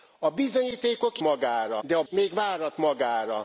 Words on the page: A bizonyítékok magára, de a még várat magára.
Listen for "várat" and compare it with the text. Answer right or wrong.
right